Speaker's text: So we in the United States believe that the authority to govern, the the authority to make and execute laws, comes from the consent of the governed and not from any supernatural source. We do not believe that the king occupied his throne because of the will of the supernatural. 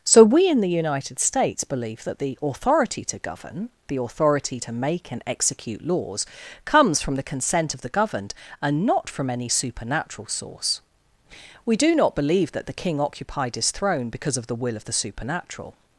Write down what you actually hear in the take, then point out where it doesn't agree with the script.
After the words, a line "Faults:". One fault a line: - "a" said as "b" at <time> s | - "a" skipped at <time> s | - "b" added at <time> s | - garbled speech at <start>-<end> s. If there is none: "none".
So we in the United States believe that the authority to govern, the authority to make and execute laws, comes from the consent of the governed and not from any supernatural source. We do not believe that the king occupied his throne because of the will of the supernatural.
Faults:
- "the" skipped at 4.0 s